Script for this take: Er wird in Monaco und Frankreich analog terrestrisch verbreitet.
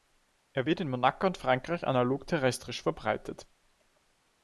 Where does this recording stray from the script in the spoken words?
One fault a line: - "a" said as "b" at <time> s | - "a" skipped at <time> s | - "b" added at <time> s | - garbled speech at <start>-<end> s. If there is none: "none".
none